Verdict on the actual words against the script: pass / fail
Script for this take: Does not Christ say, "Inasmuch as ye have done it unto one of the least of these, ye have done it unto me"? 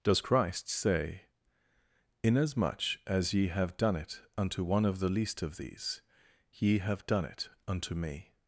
fail